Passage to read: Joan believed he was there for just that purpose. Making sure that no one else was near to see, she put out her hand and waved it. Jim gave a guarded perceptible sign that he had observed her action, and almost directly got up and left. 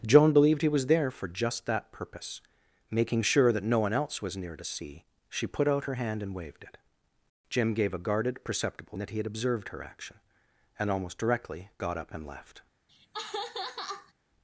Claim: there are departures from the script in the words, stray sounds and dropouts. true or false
true